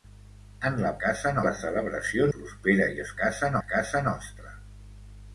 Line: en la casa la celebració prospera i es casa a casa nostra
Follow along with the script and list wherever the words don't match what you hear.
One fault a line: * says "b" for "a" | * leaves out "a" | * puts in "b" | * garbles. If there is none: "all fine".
all fine